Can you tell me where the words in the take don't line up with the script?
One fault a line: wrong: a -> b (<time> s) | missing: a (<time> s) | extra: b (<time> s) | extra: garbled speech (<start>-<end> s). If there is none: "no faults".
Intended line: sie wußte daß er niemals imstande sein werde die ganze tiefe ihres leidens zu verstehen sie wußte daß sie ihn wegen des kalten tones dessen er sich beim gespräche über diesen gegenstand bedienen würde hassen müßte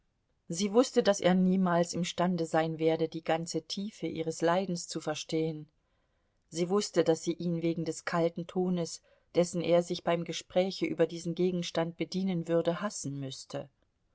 no faults